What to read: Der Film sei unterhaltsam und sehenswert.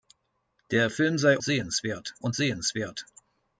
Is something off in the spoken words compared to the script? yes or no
yes